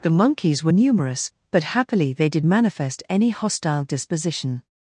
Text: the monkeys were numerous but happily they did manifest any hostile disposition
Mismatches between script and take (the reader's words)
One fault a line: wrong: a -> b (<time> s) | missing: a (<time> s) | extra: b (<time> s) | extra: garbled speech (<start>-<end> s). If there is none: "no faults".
no faults